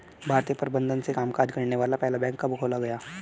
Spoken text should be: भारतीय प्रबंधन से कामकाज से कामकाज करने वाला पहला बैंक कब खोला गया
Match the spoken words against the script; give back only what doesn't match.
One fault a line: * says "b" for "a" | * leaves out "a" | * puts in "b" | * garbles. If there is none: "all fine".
* leaves out "से कामकाज"